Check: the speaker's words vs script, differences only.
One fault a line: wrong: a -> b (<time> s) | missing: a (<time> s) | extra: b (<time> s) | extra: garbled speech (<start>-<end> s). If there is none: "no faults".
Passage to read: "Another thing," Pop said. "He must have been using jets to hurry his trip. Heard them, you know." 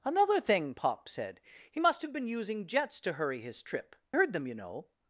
no faults